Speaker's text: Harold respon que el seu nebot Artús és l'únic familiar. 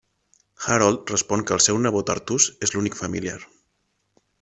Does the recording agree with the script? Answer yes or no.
yes